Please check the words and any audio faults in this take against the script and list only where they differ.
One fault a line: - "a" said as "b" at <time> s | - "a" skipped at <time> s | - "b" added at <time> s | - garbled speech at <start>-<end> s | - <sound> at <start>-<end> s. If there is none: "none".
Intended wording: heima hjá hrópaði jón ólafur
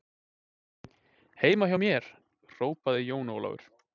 - "mér" added at 1.8 s